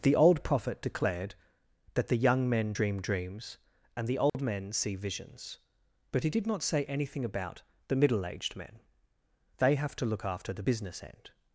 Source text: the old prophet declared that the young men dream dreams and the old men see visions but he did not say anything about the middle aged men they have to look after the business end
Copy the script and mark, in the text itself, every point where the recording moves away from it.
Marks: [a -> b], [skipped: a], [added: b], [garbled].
the old prophet declared that the young men dream dreams and the old men see visions but he did not say anything about the middle aged men they have to look after the business end